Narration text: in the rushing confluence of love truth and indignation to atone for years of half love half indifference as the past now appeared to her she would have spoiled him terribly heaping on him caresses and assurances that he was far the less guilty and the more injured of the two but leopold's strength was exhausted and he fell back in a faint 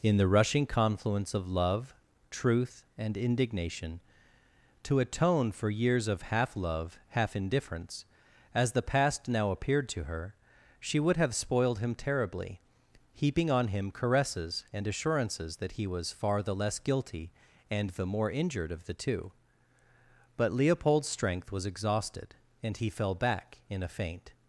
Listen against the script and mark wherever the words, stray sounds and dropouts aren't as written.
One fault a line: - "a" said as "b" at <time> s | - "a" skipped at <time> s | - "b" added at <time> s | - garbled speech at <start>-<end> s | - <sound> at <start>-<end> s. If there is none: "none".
none